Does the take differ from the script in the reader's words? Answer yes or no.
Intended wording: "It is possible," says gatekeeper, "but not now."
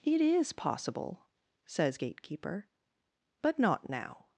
no